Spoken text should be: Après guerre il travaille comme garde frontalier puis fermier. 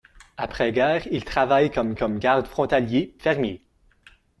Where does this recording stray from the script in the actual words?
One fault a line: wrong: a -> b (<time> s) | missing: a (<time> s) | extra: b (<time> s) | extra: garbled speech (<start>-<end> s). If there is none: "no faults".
extra: comme (1.9 s)
missing: puis (3.1 s)